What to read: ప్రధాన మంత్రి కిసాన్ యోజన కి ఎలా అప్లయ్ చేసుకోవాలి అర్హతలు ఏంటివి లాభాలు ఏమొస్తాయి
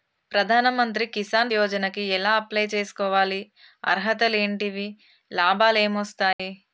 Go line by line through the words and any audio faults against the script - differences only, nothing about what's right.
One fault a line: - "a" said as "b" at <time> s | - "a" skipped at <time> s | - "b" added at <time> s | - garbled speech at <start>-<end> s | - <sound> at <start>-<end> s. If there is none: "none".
- dropout at 6.3-6.4 s